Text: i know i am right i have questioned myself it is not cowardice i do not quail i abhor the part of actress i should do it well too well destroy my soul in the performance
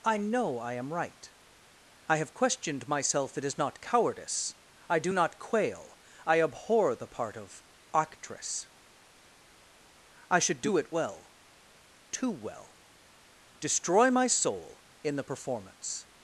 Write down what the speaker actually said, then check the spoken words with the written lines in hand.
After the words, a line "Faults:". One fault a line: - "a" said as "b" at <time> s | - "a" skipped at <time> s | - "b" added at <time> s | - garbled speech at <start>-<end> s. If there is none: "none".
i know i am right i have questioned myself it is not cowardice i do not quail i abhor the part of actress i should do it well too well destroy my soul in the performance
Faults:
none